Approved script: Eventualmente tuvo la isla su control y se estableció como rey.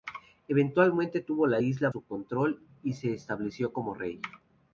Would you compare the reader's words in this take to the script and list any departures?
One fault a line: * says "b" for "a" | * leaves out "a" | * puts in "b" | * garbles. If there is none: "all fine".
all fine